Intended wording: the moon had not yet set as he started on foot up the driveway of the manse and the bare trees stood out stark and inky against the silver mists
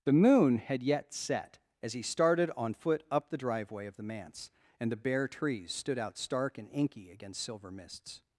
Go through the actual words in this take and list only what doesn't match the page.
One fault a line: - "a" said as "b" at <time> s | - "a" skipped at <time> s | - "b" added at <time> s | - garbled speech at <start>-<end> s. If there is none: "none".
- "not" skipped at 0.8 s
- "the" skipped at 7.4 s